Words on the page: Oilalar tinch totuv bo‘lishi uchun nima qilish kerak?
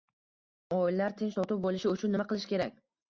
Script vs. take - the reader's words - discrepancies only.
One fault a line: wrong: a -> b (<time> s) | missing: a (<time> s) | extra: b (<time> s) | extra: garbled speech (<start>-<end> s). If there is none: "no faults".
no faults